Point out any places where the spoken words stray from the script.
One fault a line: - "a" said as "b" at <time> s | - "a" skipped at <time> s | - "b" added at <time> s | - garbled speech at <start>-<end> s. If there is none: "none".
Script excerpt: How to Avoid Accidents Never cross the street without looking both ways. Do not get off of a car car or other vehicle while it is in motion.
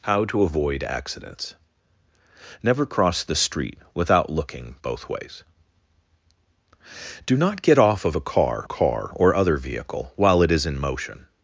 none